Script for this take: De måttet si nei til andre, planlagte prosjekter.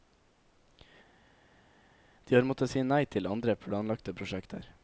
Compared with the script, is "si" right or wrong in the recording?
right